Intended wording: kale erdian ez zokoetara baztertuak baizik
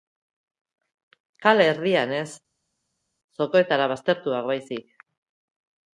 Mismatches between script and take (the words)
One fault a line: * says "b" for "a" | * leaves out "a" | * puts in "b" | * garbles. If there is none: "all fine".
all fine